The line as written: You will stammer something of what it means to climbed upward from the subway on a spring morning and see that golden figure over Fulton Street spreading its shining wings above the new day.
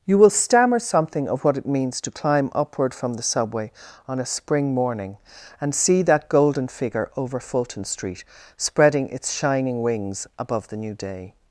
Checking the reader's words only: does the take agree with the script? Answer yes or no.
no